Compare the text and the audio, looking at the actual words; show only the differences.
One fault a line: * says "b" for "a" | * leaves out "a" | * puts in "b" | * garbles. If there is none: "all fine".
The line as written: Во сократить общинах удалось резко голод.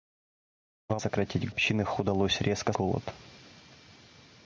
all fine